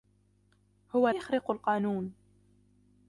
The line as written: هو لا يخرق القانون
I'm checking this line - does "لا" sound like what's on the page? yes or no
no